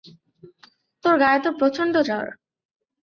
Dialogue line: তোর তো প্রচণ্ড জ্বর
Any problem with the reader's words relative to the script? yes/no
yes